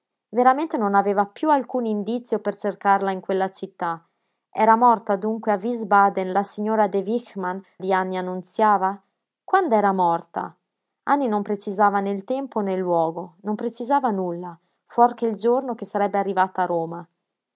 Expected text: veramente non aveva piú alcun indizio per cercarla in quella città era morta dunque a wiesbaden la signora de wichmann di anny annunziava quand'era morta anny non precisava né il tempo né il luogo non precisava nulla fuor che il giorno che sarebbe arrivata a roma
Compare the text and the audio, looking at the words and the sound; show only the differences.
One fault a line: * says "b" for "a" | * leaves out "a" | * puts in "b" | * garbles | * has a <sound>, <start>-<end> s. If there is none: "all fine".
all fine